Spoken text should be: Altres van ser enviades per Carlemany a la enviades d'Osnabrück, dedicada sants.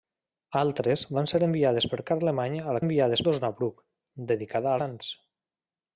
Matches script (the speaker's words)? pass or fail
pass